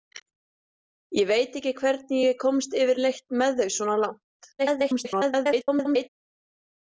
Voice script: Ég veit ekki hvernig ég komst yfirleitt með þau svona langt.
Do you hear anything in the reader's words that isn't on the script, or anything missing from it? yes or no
yes